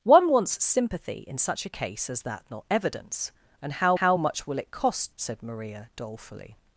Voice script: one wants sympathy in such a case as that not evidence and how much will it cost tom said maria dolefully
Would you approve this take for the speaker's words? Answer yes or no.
no